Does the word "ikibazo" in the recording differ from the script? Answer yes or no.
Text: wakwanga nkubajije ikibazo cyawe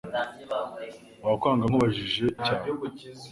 yes